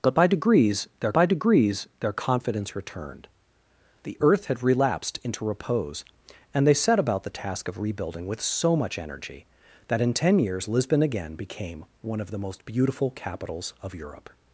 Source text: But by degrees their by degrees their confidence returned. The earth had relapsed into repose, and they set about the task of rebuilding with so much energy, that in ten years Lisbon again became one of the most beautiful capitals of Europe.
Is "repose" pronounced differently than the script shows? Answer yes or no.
no